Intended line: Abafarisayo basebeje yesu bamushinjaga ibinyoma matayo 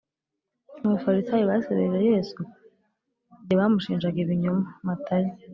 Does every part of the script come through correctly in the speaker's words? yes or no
no